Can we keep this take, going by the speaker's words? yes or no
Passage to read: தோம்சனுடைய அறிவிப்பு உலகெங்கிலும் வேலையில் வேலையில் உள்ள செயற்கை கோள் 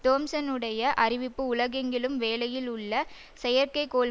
no